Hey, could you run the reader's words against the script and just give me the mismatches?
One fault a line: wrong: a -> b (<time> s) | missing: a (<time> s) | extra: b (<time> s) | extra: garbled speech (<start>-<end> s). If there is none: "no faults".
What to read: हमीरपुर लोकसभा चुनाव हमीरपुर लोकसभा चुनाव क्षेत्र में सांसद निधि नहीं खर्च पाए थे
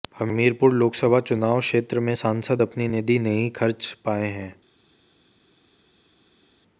missing: हमीरपुर लोकसभा चुनाव (1.6 s)
extra: अपनी (2.6 s)
wrong: थे -> हैं (4.3 s)